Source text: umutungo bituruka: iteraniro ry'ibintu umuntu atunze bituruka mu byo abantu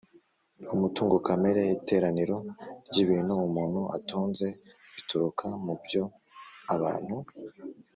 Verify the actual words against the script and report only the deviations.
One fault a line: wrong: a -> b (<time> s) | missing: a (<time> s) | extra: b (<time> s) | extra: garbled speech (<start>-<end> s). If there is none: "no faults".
wrong: bituruka -> kamere (1.3 s)